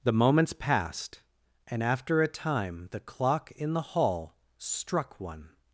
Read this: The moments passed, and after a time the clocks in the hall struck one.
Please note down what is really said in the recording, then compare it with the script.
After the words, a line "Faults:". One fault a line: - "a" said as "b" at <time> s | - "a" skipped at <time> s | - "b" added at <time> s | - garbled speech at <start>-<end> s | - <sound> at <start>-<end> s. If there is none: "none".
The moments passed, and after a time the clock in the hall struck one.
Faults:
- "clocks" said as "clock" at 3.0 s